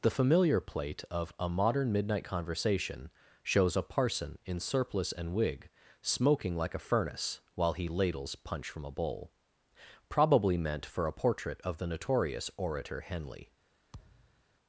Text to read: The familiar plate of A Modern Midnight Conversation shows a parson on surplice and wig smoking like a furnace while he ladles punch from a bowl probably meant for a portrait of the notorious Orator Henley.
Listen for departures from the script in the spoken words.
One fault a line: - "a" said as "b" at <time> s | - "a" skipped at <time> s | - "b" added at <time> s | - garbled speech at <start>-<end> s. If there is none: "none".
- "on" said as "in" at 4.5 s